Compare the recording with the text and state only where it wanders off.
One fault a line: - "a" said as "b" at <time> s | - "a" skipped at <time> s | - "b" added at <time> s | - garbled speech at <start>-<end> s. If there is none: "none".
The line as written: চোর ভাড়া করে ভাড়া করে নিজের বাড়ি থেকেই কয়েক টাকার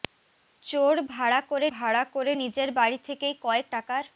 none